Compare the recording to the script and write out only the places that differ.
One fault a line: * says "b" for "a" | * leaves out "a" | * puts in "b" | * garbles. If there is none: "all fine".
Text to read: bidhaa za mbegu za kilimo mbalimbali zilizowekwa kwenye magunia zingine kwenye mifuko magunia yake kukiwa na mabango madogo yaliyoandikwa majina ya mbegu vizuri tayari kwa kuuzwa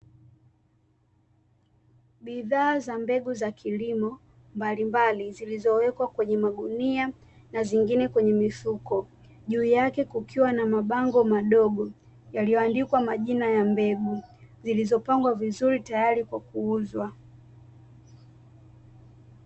* puts in "na"
* says "juu" for "magunia"
* puts in "zilizopangwa"